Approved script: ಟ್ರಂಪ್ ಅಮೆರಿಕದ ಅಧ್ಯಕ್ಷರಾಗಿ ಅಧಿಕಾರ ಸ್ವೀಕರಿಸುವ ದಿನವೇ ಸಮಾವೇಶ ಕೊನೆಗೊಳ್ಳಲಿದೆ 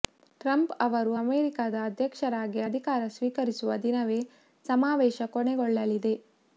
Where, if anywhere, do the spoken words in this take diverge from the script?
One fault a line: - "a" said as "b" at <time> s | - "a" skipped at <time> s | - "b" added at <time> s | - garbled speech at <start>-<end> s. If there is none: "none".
- "ಅವರು" added at 0.8 s